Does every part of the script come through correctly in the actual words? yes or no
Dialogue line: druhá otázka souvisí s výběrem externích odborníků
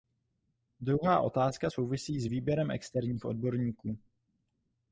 yes